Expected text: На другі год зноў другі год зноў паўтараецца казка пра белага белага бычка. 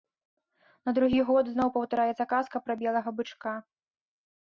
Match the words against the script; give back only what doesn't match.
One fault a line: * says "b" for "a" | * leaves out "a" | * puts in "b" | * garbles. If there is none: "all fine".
* leaves out "другі год зноў"
* leaves out "белага"